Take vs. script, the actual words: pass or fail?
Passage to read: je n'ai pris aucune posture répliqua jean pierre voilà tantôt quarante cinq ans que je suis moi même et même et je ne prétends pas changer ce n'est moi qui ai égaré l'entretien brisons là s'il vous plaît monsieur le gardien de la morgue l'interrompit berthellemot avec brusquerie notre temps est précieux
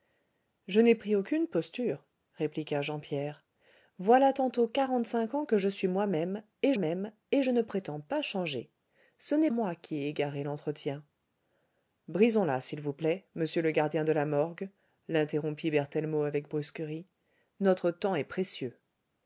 pass